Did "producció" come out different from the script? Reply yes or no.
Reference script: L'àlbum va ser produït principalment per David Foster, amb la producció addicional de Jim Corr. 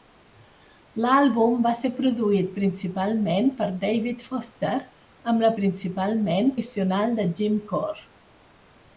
yes